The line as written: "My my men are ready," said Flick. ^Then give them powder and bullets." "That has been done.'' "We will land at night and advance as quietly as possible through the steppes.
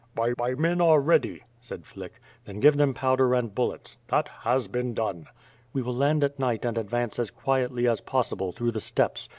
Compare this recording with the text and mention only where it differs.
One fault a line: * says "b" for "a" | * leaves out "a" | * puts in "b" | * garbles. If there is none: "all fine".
all fine